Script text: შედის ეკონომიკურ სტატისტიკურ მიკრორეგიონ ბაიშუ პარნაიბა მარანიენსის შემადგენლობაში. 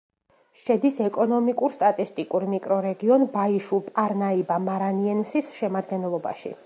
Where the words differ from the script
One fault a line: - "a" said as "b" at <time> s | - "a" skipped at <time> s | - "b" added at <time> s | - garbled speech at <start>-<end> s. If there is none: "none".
none